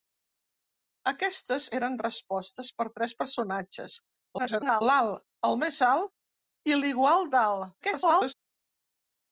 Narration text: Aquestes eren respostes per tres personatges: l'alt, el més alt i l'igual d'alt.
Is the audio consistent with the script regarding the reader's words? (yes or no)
no